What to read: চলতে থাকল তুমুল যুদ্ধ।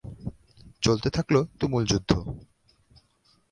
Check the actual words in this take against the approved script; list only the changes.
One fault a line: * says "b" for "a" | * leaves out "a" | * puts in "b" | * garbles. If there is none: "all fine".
all fine